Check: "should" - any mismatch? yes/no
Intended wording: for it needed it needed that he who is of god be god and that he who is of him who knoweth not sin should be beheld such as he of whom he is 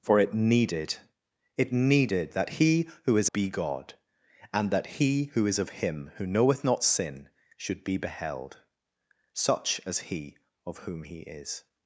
no